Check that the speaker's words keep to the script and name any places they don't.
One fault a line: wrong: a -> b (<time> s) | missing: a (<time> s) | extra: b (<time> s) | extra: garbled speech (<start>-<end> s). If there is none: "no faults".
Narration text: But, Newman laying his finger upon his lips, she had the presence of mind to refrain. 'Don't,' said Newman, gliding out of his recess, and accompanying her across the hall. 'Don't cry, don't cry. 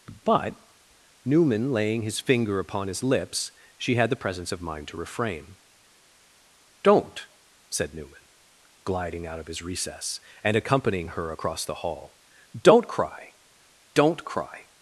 no faults